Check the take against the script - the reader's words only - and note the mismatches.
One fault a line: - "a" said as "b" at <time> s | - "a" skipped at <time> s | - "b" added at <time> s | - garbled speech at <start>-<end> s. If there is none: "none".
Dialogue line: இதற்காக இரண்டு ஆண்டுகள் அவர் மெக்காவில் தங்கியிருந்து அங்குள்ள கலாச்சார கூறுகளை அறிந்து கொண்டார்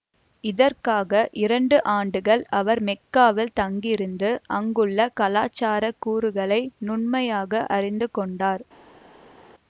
- "நுண்மையாக" added at 6.8 s